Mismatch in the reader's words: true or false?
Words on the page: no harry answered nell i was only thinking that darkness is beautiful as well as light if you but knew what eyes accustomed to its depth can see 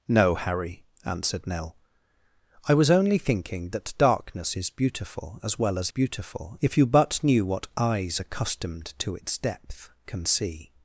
true